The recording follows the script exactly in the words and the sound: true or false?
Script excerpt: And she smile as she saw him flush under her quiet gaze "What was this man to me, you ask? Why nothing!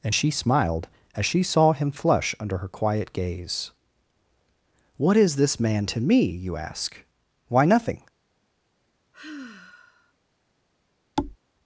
false